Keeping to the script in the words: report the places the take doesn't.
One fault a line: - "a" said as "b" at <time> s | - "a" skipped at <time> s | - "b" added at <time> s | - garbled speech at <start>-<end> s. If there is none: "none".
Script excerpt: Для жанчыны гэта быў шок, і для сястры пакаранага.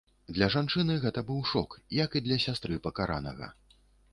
- "як" added at 2.0 s